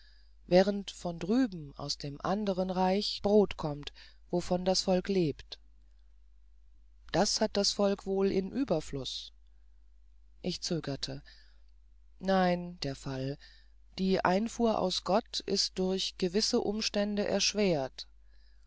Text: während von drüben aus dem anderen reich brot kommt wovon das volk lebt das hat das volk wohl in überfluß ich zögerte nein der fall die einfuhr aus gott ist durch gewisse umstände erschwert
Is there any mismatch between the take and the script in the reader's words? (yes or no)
no